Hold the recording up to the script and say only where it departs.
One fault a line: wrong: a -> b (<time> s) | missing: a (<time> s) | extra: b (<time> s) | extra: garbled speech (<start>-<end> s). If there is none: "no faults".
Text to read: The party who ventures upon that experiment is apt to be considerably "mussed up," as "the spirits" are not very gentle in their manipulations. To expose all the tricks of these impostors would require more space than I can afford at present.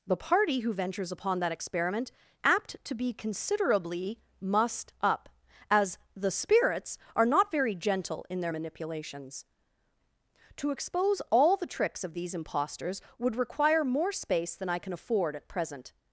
missing: is (2.1 s)